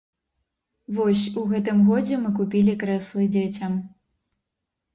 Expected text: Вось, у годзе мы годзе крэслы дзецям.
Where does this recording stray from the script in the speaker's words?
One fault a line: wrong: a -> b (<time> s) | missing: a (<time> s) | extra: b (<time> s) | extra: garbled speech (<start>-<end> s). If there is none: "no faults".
extra: гэтым (1.5 s)
wrong: годзе -> купілі (2.4 s)